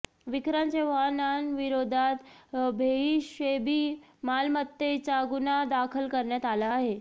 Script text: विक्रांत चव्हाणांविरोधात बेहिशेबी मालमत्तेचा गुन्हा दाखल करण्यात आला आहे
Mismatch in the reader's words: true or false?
false